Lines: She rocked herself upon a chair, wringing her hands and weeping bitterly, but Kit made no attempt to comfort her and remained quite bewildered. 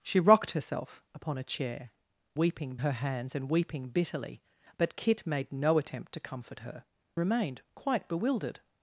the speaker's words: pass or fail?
fail